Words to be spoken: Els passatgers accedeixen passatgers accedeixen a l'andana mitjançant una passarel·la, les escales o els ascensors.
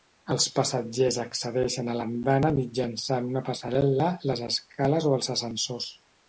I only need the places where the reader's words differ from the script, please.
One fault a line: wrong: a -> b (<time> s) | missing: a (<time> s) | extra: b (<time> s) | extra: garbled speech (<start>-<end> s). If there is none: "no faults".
missing: passatgers accedeixen (1.9 s)